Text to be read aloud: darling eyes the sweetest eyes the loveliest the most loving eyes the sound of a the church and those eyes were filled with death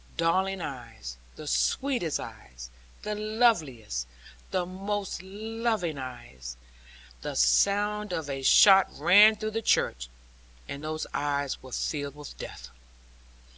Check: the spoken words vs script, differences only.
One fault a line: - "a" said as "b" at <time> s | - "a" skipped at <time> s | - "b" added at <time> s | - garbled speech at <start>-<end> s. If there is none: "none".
- "shot rang through" added at 8.4 s